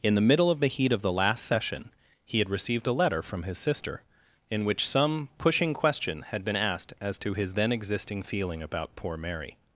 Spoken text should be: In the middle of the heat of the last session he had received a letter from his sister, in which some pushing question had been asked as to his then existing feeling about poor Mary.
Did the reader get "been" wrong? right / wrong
right